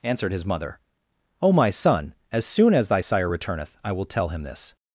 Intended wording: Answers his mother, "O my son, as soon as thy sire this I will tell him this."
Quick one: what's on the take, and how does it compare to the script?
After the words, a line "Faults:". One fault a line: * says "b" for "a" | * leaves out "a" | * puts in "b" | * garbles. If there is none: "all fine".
Answered his mother, "O my son, as soon as thy sire returneth I will tell him this."
Faults:
* says "Answered" for "Answers"
* says "returneth" for "this"